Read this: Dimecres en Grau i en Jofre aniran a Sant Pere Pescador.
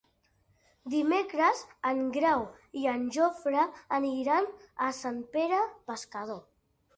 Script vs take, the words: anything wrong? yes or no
no